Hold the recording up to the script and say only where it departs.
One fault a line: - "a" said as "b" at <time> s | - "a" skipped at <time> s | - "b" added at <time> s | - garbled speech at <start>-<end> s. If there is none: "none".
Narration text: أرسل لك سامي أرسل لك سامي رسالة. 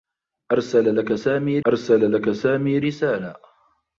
none